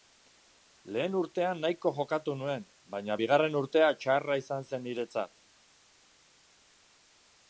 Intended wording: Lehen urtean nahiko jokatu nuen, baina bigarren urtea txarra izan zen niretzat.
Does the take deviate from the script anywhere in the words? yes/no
no